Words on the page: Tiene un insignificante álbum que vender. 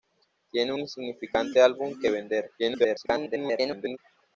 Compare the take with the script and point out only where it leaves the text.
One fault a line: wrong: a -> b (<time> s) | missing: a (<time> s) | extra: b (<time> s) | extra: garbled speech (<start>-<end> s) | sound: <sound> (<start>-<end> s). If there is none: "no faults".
missing: un (0.7 s)
extra: garbled speech (2.6-4.0 s)